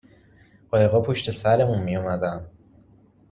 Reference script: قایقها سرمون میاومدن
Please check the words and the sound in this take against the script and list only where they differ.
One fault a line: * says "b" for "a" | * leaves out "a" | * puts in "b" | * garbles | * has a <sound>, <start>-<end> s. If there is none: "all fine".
* puts in "پشت"